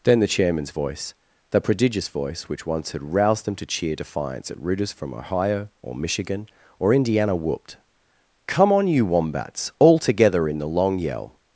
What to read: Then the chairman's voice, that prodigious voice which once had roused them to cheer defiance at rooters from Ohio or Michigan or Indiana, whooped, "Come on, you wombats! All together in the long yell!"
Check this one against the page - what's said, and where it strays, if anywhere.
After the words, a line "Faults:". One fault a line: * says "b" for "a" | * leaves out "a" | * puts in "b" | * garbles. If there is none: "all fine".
Then the chairman's voice, the prodigious voice which once had roused them to cheer defiance at rooters from Ohio or Michigan or Indiana, whooped, "Come on, you wombats! All together in the long yell!"
Faults:
* says "the" for "that"